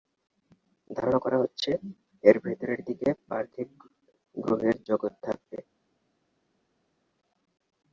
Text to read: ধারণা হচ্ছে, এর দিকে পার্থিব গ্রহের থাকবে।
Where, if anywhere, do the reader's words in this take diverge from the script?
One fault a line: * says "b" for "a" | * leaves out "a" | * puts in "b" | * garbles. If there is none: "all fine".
* puts in "করা"
* puts in "ভেতরের"
* puts in "জগৎ"